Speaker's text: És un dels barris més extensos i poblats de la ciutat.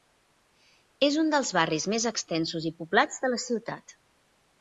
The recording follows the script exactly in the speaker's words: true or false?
true